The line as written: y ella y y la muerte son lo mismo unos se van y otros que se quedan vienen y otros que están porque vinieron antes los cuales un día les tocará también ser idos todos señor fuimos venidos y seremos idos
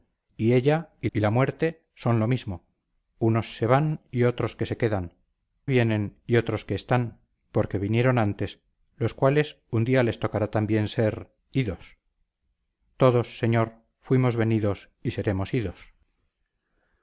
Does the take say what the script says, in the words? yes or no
yes